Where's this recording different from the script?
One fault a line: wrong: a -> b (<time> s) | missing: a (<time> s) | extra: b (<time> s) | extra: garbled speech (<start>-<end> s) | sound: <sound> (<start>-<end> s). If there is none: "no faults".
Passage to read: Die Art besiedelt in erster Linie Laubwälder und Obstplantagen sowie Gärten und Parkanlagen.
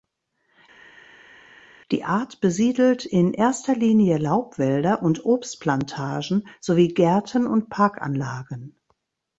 no faults